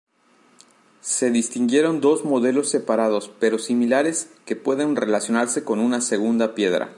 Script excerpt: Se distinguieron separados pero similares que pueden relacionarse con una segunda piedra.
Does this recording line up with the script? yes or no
no